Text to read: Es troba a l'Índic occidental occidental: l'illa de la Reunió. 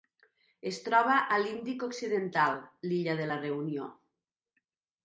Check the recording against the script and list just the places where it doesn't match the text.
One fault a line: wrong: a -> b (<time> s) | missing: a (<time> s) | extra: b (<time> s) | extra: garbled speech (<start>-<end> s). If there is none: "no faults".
missing: occidental (2.6 s)